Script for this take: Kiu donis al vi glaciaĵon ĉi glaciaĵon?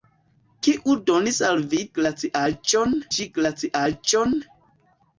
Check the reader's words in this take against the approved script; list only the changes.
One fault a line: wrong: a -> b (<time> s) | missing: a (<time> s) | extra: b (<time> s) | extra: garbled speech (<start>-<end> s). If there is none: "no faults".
no faults